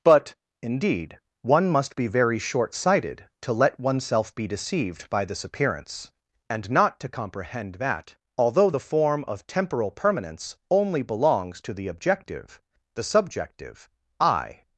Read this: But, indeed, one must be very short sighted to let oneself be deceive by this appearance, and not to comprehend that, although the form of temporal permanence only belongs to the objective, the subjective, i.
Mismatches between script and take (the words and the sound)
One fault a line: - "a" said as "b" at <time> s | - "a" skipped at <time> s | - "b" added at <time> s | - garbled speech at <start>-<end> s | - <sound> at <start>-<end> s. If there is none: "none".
- "deceive" said as "deceived" at 4.5 s